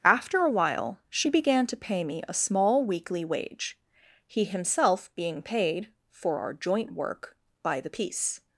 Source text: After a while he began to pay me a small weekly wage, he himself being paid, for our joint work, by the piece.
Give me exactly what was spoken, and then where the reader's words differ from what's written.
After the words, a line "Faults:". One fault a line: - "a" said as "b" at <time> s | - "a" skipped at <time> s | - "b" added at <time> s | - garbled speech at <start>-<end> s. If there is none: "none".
After a while she began to pay me a small weekly wage, he himself being paid, for our joint work, by the piece.
Faults:
- "he" said as "she" at 1.1 s